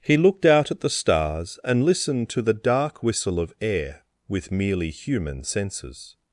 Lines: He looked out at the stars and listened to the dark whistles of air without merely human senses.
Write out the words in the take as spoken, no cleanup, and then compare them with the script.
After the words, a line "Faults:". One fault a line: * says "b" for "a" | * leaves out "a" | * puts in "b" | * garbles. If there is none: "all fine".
He looked out at the stars and listened to the dark whistle of air with merely human senses.
Faults:
* says "whistle" for "whistles"
* says "with" for "without"